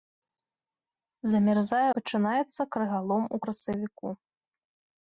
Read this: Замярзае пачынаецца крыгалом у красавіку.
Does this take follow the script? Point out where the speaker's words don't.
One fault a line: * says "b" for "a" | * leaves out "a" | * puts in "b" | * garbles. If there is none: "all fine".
all fine